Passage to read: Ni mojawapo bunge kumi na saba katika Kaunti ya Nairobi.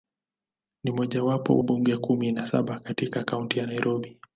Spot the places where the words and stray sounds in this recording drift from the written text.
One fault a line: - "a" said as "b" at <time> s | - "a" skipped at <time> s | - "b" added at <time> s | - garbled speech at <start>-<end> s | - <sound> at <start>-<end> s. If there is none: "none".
none